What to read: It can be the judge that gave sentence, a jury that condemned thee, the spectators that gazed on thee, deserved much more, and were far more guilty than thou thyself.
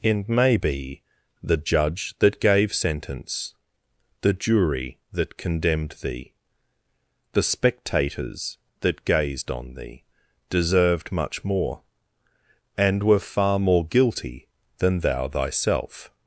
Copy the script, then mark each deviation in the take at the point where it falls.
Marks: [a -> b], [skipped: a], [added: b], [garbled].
It [can -> may] be the judge that gave sentence, [a -> the] jury that condemned thee, the spectators that gazed on thee, deserved much more, and were far more guilty than thou thyself.